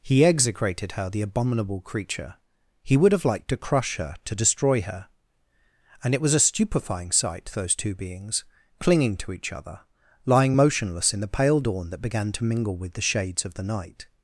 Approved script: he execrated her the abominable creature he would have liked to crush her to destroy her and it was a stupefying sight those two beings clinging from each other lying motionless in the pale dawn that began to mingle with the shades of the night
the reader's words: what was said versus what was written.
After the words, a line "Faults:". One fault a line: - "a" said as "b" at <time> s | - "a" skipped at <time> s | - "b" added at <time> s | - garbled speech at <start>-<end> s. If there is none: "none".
he execrated her the abominable creature he would have liked to crush her to destroy her and it was a stupefying sight those two beings clinging to each other lying motionless in the pale dawn that began to mingle with the shades of the night
Faults:
- "from" said as "to" at 9.2 s